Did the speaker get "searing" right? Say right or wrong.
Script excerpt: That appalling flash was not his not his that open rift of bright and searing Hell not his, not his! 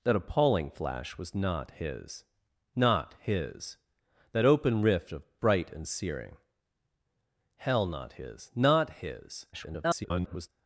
right